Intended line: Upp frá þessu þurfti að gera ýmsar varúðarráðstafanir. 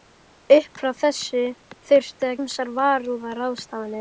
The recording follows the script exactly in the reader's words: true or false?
false